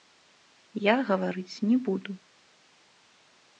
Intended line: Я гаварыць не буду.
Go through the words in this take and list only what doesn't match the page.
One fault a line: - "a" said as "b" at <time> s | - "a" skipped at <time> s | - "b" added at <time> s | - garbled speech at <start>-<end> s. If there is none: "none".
none